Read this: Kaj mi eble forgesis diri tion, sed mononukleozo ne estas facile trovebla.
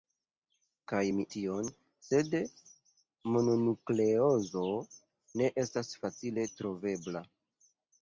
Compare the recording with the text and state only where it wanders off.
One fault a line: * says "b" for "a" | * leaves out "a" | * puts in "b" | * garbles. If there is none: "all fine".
* leaves out "eble forgesis diri"